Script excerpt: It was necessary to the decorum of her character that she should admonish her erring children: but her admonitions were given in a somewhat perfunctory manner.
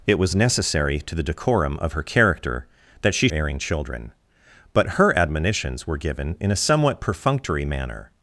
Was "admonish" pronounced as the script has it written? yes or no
no